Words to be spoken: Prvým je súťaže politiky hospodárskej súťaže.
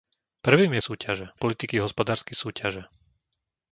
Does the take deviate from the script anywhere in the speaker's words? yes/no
no